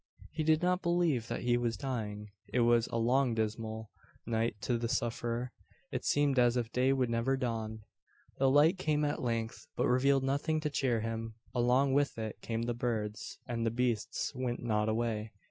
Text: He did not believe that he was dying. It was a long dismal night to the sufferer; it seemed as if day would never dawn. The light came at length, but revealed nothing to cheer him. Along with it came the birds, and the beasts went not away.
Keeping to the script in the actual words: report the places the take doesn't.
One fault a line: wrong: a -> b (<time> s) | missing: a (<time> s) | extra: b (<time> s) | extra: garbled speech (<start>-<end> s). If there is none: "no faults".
no faults